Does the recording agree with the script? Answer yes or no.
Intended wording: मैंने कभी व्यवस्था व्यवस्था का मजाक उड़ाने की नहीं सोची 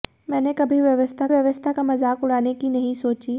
yes